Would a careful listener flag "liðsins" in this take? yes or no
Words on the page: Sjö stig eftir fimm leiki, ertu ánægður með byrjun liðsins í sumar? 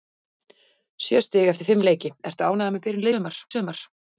yes